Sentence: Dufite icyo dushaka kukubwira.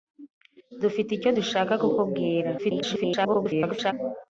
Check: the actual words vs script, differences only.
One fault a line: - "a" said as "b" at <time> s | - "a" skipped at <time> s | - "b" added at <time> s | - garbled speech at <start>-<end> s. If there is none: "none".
- garbled speech at 2.6-3.9 s